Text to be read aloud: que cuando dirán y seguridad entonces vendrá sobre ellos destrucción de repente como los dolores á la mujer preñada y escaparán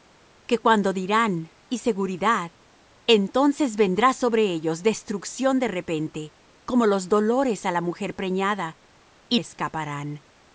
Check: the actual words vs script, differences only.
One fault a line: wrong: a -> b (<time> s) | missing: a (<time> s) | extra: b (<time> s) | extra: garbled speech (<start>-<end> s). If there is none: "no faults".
no faults